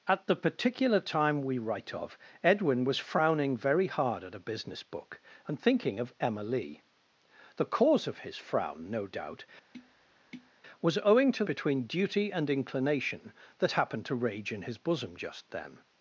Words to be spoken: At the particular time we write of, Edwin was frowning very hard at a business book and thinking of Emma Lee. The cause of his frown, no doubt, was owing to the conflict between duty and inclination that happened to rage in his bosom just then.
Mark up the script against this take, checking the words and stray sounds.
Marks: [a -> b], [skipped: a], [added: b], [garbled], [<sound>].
At the particular time we write of, Edwin was frowning very hard at a business book and thinking of Emma Lee. The cause of his frown, no doubt, [tap] was owing to [skipped: the conflict] between duty and inclination that happened to rage in his bosom just then.